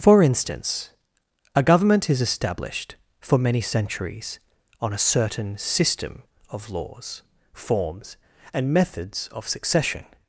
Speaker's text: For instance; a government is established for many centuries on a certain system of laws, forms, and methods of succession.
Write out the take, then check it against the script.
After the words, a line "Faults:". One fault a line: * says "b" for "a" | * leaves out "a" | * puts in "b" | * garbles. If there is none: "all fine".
For instance; a government is established for many centuries on a certain system of laws, forms, and methods of succession.
Faults:
all fine